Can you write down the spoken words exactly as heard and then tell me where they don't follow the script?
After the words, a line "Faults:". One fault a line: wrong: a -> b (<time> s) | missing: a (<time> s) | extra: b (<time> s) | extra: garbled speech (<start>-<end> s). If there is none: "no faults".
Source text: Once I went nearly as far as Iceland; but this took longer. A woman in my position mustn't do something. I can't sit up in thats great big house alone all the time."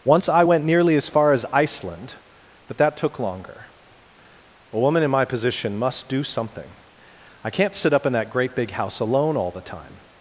Once I went nearly as far as Iceland; but that took longer. A woman in my position must do something. I can't sit up in that great big house alone all the time."
Faults:
wrong: this -> that (2.8 s)
wrong: mustn't -> must (5.8 s)
wrong: thats -> that (8.1 s)